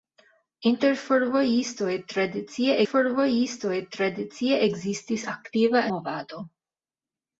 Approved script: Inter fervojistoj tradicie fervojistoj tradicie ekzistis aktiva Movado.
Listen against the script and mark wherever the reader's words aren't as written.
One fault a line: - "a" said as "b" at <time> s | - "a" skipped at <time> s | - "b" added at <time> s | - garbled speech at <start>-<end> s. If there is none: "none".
none